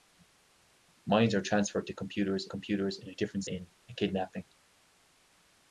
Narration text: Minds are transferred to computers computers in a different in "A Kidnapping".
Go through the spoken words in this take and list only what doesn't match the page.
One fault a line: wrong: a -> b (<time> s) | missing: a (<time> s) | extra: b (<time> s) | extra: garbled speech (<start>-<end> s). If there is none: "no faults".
no faults